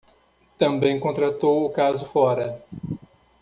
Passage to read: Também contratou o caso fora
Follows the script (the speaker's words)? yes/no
yes